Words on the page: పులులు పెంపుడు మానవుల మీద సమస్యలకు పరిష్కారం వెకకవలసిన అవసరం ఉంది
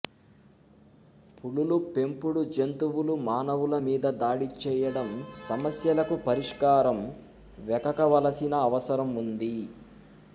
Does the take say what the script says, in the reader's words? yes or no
no